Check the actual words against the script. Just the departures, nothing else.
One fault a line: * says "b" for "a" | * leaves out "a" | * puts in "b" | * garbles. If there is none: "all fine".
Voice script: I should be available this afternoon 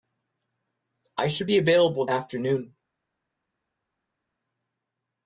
* leaves out "this"